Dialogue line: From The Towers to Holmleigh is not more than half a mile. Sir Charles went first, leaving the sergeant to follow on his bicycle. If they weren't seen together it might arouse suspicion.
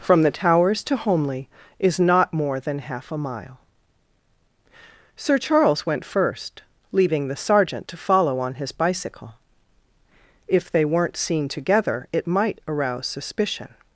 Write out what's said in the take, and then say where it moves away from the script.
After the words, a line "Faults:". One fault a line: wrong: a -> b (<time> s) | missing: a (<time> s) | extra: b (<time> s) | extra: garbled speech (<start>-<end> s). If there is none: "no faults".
From The Towers to Holmleigh is not more than half a mile. Sir Charles went first, leaving the sergeant to follow on his bicycle. If they weren't seen together it might arouse suspicion.
Faults:
no faults